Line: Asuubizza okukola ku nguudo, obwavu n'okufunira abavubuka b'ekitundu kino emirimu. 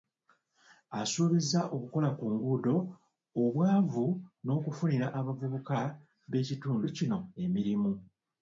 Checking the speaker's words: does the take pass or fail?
pass